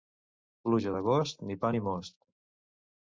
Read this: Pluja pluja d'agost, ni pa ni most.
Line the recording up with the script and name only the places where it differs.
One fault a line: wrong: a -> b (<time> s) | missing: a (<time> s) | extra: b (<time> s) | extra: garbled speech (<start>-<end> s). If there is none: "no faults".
missing: pluja (0.9 s)